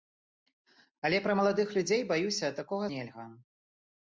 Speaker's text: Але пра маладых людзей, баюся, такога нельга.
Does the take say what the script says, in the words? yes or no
yes